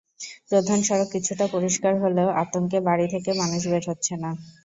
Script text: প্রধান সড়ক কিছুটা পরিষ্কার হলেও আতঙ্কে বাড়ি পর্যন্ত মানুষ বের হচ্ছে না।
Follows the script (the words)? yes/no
no